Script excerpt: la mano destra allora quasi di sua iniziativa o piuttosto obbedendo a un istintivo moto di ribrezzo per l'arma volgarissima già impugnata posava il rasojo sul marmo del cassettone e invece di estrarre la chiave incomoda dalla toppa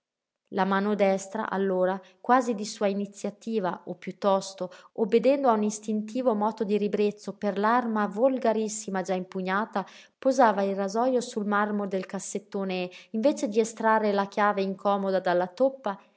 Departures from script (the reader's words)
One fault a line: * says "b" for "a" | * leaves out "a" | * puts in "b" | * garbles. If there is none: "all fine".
all fine